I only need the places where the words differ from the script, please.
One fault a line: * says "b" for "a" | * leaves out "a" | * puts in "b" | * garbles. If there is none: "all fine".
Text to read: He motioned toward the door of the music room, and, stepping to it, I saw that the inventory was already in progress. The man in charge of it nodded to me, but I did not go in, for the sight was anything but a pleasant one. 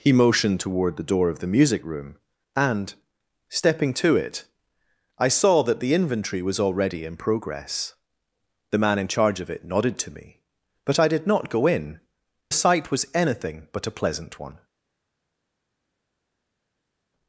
* leaves out "for the"